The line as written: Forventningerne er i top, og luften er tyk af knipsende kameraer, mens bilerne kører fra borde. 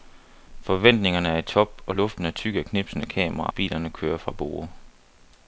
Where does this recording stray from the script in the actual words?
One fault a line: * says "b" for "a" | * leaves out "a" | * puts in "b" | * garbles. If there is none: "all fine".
* leaves out "mens"